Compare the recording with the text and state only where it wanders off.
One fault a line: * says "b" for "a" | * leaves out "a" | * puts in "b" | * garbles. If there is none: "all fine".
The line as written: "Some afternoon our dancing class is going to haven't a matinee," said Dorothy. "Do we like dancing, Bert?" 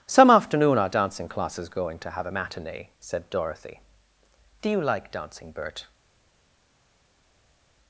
* says "have" for "haven't"
* says "you" for "we"